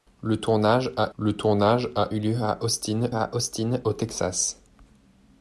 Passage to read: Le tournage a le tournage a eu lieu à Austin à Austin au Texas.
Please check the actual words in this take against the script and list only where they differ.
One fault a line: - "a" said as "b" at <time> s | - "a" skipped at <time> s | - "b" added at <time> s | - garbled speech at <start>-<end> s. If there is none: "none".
none